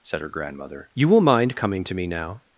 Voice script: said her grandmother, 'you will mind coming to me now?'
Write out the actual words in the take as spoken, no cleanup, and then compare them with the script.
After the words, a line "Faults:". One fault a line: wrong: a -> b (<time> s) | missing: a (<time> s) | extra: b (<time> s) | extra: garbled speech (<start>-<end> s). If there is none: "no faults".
said her grandmother, 'you will mind coming to me now?'
Faults:
no faults